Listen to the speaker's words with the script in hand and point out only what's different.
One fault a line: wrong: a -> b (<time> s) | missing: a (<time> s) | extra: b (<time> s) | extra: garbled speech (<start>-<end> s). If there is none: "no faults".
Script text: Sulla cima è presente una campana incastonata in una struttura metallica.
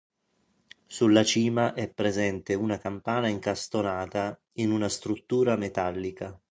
no faults